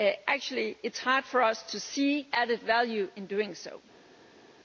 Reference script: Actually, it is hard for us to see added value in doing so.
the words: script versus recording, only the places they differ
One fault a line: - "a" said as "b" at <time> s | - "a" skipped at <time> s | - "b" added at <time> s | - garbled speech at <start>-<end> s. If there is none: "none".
none